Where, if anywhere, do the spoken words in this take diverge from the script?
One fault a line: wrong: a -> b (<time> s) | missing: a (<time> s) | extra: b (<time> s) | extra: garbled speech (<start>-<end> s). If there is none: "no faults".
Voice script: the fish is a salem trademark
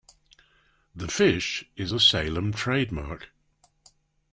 no faults